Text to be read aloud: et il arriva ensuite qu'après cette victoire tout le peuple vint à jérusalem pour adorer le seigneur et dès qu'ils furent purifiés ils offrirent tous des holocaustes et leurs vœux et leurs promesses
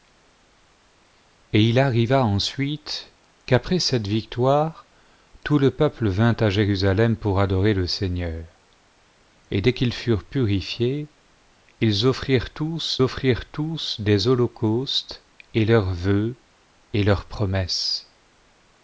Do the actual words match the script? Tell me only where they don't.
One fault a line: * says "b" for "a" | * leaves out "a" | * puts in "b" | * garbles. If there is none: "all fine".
* puts in "offrirent tous"